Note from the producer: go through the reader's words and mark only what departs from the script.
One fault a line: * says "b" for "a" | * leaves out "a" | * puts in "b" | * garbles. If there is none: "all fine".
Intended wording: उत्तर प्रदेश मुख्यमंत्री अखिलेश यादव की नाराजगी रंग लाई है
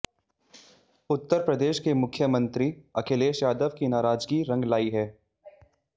* puts in "के"